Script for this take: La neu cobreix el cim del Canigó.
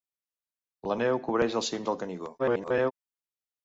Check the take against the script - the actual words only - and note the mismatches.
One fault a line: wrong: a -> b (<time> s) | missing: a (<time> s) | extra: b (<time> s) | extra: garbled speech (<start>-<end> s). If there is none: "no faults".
extra: garbled speech (2.4-2.9 s)